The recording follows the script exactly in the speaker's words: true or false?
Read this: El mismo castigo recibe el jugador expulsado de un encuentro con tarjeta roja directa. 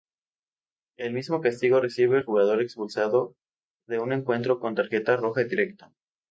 true